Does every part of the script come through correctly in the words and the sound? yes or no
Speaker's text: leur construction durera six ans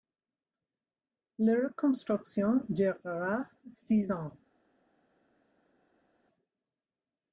yes